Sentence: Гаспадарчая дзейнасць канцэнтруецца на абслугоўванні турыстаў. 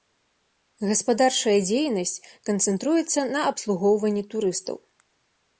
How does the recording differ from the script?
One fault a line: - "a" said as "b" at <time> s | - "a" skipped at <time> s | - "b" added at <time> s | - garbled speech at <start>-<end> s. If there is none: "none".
none